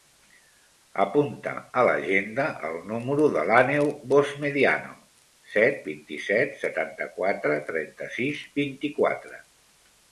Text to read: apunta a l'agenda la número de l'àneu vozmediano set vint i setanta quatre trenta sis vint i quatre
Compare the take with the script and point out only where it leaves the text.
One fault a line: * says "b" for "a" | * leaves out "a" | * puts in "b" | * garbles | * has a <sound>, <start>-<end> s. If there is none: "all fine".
* says "el" for "la"
* puts in "set"